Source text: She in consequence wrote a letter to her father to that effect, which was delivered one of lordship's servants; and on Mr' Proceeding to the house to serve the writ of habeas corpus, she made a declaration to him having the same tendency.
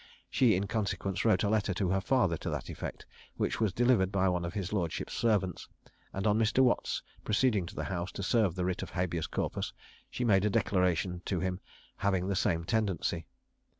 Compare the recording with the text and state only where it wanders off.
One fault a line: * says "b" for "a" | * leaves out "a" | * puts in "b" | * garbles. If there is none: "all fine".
* puts in "by"
* puts in "his"
* puts in "Watts"